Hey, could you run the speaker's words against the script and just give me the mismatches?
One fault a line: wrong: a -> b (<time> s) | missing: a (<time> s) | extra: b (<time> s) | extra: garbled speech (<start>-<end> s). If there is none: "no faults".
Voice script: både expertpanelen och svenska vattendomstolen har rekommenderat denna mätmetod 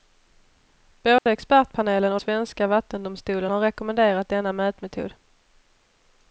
no faults